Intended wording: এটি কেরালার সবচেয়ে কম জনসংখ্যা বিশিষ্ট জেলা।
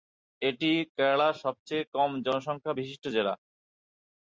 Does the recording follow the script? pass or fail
pass